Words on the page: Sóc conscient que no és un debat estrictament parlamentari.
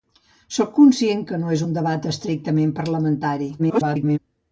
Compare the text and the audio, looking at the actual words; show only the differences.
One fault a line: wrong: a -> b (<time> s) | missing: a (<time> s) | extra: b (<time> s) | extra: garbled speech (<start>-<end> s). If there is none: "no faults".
extra: garbled speech (3.6-4.2 s)